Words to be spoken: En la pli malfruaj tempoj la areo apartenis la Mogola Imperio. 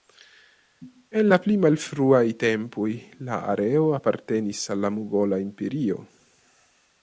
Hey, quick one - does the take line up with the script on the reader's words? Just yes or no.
no